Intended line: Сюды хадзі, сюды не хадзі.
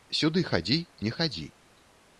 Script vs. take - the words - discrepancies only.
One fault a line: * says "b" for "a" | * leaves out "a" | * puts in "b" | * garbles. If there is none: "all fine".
* leaves out "сюды"